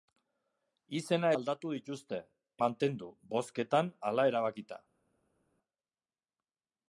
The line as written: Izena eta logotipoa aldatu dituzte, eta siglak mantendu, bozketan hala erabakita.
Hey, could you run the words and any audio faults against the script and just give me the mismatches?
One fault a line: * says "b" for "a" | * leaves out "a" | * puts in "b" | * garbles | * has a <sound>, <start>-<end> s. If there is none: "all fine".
* leaves out "eta logotipoa"
* leaves out "eta siglak"